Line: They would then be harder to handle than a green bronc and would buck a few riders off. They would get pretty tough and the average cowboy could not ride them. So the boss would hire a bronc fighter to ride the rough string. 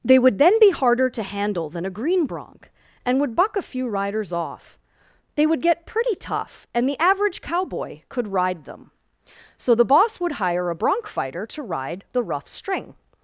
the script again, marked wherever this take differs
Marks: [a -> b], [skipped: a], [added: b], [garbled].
They would then be harder to handle than a green bronc and would buck a few riders off. They would get pretty tough and the average cowboy could [skipped: not] ride them. So the boss would hire a bronc fighter to ride the rough string.